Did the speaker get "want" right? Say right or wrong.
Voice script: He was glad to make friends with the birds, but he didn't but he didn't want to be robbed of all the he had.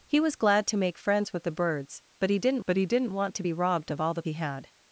right